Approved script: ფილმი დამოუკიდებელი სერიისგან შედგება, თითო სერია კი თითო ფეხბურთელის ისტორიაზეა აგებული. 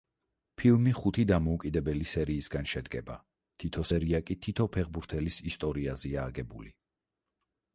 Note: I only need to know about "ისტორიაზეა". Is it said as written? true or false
true